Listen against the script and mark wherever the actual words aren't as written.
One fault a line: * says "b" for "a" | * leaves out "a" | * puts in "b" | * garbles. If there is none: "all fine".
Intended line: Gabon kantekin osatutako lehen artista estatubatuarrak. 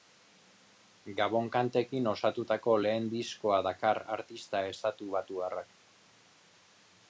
* puts in "diskoa dakar"